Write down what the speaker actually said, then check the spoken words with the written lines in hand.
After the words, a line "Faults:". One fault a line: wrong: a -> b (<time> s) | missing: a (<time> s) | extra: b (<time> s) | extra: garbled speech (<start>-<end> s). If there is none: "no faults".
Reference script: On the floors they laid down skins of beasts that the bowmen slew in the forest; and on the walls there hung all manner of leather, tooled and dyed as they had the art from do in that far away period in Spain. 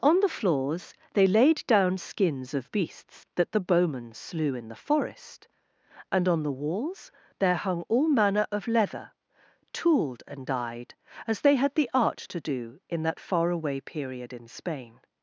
On the floors they laid down skins of beasts that the bowmen slew in the forest; and on the walls there hung all manner of leather, tooled and dyed as they had the art to do in that far away period in Spain.
Faults:
wrong: from -> to (12.2 s)